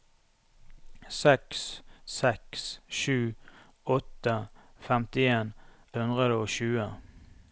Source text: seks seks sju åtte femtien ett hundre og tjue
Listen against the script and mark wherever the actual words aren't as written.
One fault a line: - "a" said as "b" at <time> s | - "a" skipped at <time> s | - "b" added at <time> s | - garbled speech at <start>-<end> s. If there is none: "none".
- "ett" skipped at 5.5 s